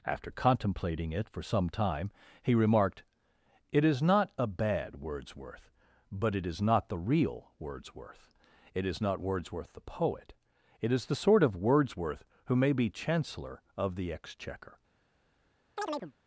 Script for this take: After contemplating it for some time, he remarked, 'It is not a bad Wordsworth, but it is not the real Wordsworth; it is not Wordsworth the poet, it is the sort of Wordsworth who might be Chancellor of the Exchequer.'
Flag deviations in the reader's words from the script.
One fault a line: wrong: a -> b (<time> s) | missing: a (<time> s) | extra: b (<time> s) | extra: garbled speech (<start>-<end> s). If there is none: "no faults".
wrong: might -> may (12.6 s)